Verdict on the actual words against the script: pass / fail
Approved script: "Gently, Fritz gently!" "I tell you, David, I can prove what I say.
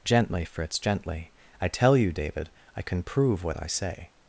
pass